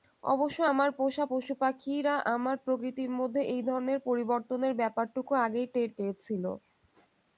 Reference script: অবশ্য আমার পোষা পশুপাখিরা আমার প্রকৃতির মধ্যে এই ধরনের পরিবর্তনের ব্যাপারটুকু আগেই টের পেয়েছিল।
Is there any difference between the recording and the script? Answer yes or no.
no